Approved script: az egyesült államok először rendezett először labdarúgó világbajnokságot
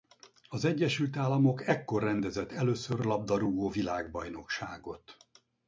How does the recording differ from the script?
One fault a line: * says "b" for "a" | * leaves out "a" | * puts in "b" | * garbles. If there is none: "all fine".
* says "ekkor" for "először"